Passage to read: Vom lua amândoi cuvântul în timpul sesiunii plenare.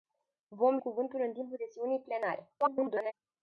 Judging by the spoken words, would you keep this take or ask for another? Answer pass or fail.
fail